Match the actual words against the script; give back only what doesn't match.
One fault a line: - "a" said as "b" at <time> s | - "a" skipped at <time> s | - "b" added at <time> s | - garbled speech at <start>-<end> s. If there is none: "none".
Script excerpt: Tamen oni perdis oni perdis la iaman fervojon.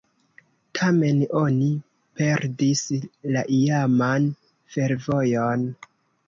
- "oni perdis" skipped at 2.8 s